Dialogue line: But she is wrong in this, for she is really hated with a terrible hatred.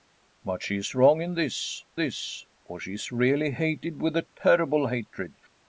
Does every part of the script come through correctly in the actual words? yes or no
no